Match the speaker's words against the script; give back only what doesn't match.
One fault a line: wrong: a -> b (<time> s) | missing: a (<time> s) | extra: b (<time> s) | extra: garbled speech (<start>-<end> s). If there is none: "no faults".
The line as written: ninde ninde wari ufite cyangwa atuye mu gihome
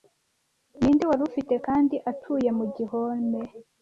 missing: ninde (1.0 s)
wrong: cyangwa -> kandi (1.7 s)